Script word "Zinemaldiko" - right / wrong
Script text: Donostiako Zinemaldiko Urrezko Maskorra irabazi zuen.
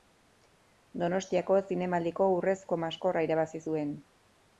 right